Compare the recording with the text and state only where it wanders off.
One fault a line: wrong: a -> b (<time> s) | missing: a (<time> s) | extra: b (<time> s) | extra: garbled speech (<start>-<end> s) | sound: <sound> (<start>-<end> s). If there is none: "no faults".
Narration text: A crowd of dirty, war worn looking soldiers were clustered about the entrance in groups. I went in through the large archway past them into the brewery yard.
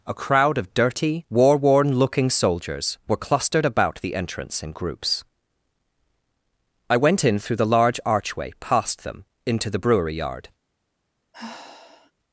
sound: sigh (11.3-12.1 s)